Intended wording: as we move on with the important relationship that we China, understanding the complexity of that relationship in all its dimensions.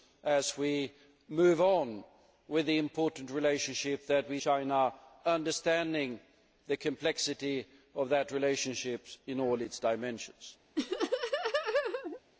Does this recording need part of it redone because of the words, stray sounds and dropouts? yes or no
yes